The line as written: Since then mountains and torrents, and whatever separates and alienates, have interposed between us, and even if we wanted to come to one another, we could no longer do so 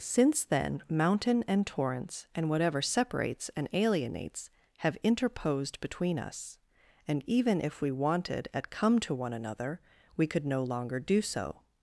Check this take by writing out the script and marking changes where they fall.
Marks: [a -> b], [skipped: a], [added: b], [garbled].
Since then [mountains -> mountain] and torrents, and whatever separates and alienates, have interposed between us, and even if we wanted [to -> at] come to one another, we could no longer do so